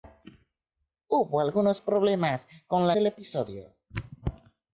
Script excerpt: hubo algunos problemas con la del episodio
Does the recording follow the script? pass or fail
pass